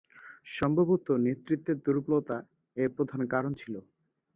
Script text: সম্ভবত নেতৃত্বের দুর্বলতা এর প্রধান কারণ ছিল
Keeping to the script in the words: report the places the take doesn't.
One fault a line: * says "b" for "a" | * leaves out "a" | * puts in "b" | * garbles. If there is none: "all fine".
all fine